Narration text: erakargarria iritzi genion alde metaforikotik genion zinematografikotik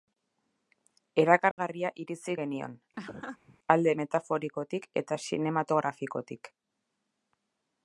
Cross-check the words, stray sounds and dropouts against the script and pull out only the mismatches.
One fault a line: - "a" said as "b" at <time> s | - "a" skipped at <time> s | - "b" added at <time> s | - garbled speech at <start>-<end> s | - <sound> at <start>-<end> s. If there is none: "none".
- dropout at 1.5-1.6 s
- laugh at 3.0-3.6 s
- "genion" said as "eta" at 5.0 s